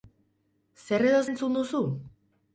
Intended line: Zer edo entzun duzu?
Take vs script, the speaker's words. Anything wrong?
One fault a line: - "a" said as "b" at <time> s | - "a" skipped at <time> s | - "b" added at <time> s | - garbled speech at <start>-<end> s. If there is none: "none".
none